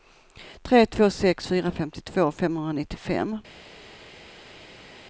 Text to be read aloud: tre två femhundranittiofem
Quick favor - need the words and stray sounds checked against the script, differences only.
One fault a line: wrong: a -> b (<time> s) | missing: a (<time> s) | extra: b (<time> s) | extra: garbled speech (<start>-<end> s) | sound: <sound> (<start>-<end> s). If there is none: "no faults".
extra: sex fyra femtiotvå (1.1 s)